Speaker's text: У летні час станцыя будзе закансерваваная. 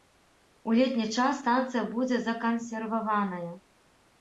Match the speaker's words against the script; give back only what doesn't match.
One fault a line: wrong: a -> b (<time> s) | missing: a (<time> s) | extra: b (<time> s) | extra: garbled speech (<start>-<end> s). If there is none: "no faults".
no faults